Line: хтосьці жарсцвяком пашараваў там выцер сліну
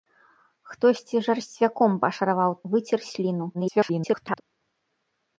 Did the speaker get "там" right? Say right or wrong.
wrong